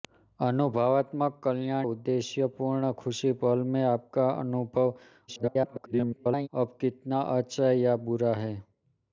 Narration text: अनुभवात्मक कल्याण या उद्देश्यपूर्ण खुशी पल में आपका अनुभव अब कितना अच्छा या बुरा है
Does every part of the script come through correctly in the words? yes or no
no